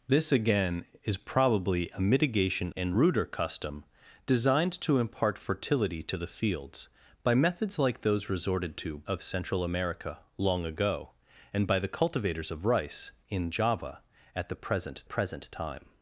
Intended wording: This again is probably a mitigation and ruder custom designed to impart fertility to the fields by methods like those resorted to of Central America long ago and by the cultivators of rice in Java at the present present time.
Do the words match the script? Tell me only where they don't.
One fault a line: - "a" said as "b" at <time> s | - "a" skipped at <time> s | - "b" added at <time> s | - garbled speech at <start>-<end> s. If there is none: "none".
none